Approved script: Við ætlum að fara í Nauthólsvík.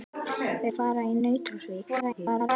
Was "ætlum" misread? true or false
true